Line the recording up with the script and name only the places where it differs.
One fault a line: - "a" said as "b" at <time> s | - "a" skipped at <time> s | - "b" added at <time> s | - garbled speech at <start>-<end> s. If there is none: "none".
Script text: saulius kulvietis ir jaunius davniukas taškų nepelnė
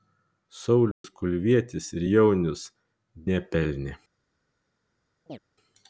- "davniukas taškų" skipped at 2.6 s